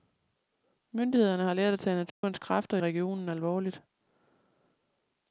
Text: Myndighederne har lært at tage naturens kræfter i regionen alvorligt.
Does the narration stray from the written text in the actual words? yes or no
yes